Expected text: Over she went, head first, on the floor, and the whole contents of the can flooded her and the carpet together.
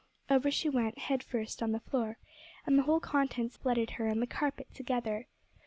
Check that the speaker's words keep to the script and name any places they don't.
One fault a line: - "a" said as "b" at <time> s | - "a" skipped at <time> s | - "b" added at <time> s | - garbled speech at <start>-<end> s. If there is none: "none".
- "of the can" skipped at 3.6 s